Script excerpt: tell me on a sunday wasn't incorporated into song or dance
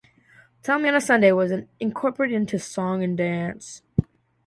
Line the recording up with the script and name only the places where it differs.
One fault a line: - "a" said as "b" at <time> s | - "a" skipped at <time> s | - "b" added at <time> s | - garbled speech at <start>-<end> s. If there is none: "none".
- "wasn't" said as "was" at 1.3 s
- "or" said as "and" at 3.0 s